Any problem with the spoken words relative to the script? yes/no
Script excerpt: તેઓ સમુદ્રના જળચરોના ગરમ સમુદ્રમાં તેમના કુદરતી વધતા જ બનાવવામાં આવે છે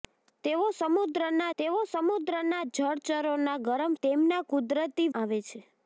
yes